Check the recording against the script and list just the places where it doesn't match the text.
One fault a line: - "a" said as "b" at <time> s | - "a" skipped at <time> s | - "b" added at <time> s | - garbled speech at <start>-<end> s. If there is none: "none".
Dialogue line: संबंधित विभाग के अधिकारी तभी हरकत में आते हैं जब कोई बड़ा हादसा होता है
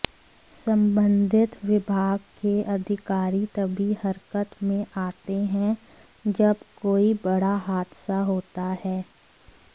none